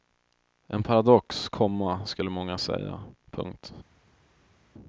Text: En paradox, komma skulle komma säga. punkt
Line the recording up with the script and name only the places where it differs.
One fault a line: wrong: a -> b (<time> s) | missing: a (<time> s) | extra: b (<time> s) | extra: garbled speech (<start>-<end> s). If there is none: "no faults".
wrong: komma -> många (2.3 s)